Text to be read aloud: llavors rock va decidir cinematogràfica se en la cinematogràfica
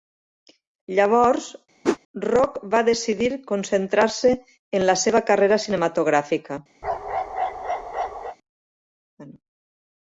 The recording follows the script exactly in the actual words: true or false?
false